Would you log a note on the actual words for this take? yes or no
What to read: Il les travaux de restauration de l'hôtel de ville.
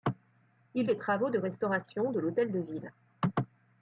no